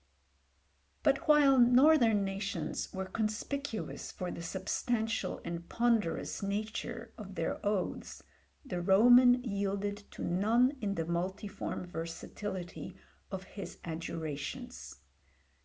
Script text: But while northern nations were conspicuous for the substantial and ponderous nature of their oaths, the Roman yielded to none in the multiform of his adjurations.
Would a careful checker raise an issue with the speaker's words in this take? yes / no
yes